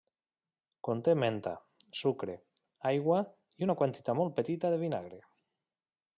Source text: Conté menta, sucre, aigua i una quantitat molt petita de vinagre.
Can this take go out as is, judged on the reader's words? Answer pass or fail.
pass